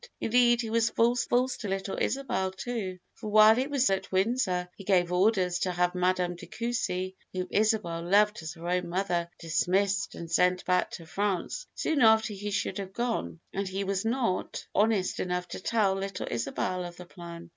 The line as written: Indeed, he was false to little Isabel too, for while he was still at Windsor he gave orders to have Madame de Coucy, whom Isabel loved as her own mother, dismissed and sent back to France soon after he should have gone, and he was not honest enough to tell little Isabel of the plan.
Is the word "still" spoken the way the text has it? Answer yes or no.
no